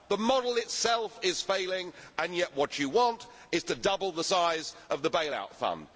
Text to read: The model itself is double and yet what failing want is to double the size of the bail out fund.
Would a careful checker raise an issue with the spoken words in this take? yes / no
yes